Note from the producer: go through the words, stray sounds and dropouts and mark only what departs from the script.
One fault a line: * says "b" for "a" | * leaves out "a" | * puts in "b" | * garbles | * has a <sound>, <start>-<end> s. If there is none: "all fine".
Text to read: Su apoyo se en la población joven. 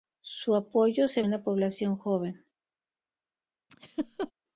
* has a laugh, 3.7-4.3 s